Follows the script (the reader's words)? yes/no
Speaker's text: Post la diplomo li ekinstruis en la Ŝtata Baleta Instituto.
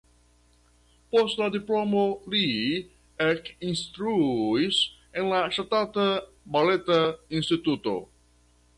yes